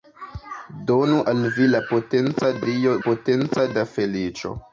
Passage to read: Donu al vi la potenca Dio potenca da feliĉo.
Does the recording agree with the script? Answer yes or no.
yes